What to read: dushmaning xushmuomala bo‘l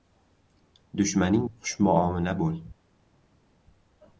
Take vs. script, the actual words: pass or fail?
pass